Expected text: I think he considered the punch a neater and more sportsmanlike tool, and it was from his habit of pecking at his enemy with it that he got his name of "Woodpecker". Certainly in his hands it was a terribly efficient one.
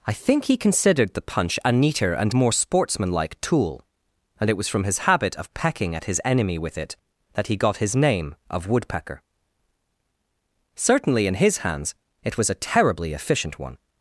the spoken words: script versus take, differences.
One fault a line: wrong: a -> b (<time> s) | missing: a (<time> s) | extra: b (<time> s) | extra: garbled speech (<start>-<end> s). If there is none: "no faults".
no faults